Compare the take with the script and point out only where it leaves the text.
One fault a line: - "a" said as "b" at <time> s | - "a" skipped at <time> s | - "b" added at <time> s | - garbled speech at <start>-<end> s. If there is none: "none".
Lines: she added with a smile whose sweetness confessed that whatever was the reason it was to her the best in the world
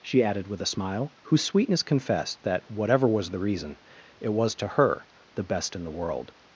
none